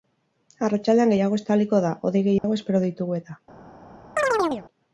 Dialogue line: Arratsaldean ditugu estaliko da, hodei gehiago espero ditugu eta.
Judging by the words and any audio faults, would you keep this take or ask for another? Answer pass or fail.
fail